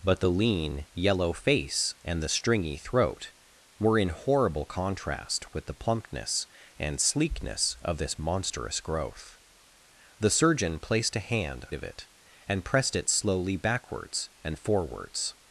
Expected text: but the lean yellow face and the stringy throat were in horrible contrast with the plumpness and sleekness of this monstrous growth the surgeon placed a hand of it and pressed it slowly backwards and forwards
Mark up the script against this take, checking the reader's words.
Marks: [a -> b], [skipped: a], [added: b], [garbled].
but the lean yellow face and the stringy throat were in horrible contrast with the plumpness and sleekness of this monstrous growth the surgeon placed a hand of it and pressed it slowly backwards and forwards